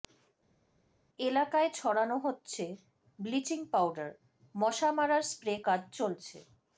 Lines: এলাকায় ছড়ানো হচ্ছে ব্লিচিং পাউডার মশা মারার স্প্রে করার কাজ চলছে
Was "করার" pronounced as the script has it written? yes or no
no